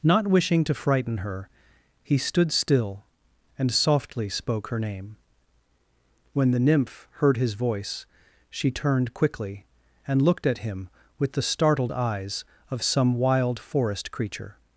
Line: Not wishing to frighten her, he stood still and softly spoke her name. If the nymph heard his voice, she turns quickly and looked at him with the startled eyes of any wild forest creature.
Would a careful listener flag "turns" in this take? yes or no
yes